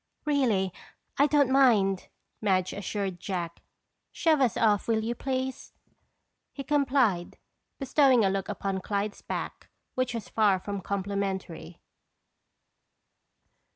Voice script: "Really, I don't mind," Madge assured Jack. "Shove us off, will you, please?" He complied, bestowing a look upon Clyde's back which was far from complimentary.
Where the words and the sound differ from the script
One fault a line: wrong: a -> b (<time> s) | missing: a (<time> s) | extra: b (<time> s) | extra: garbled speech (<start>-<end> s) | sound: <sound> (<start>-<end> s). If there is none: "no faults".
no faults